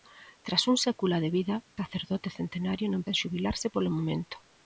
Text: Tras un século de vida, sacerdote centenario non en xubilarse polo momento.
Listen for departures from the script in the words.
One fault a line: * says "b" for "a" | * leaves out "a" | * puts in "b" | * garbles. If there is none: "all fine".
all fine